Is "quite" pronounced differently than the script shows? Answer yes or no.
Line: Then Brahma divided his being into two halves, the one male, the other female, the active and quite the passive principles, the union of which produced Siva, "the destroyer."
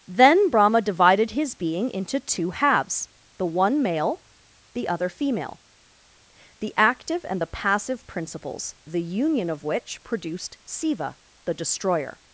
yes